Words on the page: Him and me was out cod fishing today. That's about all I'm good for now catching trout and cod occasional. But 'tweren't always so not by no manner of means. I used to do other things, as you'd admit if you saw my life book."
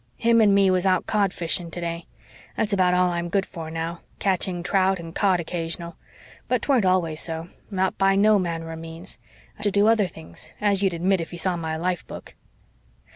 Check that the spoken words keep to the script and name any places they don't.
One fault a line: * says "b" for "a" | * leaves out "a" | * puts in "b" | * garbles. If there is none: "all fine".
* leaves out "used"